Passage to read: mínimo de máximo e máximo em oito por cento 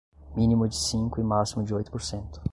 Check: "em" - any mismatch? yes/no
yes